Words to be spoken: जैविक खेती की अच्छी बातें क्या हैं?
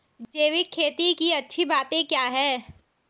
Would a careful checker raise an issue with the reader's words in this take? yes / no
no